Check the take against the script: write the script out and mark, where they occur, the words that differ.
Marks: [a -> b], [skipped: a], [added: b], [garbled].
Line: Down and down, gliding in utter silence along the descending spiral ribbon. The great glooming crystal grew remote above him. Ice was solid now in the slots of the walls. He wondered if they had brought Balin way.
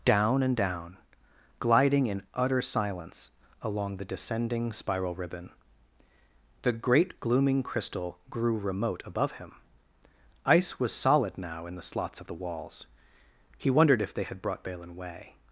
Down and down, gliding in utter silence along the descending spiral ribbon. The great glooming crystal grew remote above him. Ice was solid now in the slots of the walls. He wondered if they had brought Balin way.